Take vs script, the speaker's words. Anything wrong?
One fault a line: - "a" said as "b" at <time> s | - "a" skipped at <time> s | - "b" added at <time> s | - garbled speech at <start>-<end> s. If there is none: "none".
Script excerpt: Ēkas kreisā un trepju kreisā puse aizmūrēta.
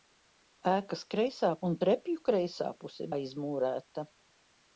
none